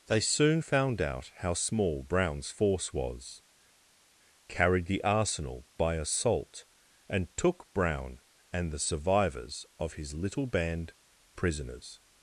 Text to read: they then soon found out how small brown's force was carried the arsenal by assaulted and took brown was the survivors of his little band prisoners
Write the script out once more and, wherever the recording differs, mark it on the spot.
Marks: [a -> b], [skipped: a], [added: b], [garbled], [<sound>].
they [skipped: then] soon found out how small brown's force was carried the arsenal by [assaulted -> assault] and took brown [was -> and] the survivors of his little band prisoners